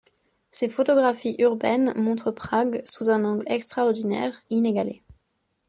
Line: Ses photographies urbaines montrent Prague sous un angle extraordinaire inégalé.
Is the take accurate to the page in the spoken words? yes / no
yes